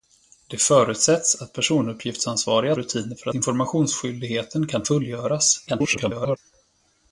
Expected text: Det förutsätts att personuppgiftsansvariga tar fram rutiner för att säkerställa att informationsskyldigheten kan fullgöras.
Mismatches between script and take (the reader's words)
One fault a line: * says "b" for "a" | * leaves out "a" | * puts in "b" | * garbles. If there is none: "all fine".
* leaves out "tar fram"
* leaves out "att säkerställa att"
* garbles